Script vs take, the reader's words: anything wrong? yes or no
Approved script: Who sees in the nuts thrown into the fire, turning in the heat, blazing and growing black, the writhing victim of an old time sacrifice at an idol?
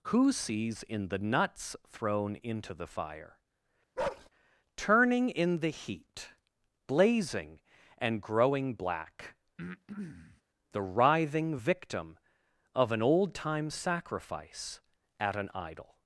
no